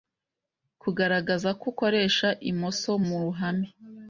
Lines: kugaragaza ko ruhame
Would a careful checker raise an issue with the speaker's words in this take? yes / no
yes